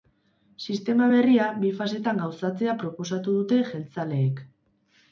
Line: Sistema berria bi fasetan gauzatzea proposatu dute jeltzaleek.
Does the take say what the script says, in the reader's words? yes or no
yes